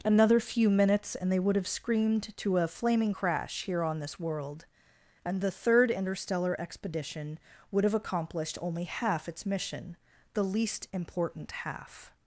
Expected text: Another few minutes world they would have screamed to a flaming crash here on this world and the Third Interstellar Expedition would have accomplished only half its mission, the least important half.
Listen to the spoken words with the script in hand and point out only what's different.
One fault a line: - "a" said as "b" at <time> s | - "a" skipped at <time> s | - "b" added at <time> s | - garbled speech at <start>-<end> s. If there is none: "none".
- "world" said as "and" at 1.1 s